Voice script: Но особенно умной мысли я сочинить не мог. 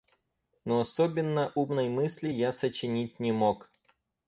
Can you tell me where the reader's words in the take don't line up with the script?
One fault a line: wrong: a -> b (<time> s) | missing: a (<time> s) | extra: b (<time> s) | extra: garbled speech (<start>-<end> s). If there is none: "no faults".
no faults